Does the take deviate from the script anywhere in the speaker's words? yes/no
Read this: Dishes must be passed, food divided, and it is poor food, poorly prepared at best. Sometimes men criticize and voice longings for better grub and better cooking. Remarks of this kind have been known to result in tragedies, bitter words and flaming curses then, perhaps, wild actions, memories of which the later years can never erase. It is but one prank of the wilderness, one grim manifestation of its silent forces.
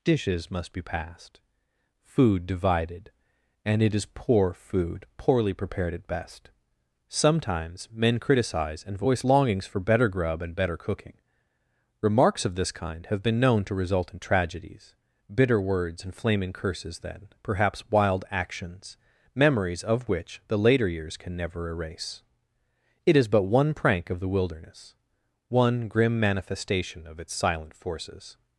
no